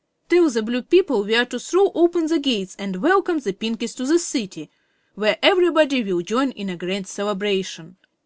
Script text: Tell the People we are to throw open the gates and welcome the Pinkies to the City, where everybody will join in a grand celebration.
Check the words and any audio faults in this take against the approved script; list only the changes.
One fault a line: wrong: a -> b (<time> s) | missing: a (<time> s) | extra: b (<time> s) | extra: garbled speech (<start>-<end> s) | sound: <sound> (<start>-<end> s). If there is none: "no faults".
extra: Blue (0.6 s)